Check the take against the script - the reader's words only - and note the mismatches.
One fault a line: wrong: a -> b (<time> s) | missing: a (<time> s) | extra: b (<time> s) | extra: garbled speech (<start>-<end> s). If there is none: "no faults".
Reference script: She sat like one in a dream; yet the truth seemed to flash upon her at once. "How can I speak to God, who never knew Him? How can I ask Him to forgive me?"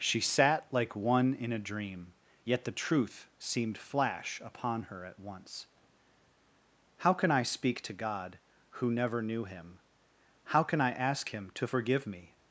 missing: to (3.8 s)